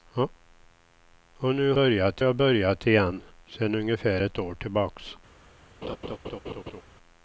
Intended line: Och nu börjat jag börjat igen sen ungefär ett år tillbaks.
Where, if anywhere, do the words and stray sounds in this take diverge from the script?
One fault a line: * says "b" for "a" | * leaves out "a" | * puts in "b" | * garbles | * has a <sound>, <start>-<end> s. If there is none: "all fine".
* has a laugh, 5.8-6.8 s